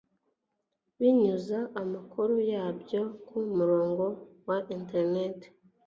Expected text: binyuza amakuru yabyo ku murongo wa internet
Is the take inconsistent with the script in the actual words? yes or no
no